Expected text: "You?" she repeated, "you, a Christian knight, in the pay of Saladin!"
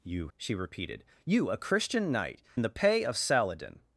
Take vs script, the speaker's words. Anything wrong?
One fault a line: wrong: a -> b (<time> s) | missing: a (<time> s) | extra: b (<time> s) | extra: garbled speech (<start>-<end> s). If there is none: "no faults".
no faults